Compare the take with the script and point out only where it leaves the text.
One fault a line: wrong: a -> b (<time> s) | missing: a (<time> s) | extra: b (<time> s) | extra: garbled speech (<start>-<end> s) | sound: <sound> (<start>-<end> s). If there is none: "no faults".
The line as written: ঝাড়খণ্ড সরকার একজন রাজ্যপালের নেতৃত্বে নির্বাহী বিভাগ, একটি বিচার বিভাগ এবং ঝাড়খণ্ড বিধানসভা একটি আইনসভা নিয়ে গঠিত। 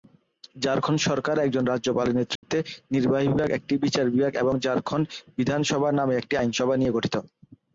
sound: dropout (2.4-2.4 s)
extra: নামে (5.9 s)